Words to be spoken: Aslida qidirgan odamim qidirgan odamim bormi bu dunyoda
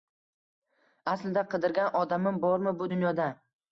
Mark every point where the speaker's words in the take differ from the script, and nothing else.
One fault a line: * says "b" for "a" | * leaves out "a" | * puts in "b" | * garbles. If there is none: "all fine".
* leaves out "qidirgan odamim"